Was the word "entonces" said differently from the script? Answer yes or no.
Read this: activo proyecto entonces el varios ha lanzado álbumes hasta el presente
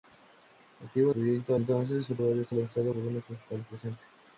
no